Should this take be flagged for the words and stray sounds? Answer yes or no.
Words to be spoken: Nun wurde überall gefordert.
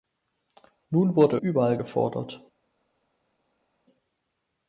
no